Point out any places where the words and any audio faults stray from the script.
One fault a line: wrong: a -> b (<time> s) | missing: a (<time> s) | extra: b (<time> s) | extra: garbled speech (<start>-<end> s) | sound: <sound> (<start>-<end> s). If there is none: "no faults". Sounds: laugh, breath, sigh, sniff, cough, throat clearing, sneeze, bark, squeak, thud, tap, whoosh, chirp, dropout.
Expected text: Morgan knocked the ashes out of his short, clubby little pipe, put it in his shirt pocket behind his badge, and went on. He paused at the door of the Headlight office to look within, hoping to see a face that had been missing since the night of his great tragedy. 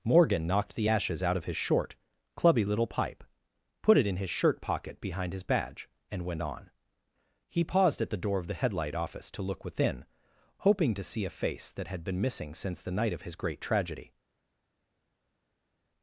no faults